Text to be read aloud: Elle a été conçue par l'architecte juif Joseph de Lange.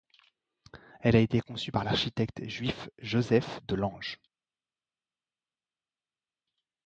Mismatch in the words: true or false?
false